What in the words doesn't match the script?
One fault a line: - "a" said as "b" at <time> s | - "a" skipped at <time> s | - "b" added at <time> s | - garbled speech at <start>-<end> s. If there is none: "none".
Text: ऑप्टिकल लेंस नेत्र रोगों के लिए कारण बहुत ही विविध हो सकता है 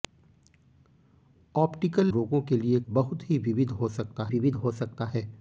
- "लेंस नेत्र" skipped at 2.1 s
- "कारण" skipped at 2.8 s
- "विविध हो सकता" added at 4.3 s